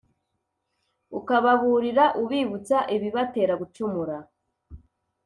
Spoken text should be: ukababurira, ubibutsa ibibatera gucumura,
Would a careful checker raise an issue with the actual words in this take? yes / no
no